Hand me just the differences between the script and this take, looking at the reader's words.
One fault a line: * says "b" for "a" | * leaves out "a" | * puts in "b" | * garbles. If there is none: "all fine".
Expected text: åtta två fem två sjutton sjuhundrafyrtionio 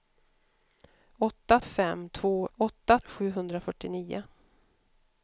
* leaves out "två"
* says "åtta" for "sjutton"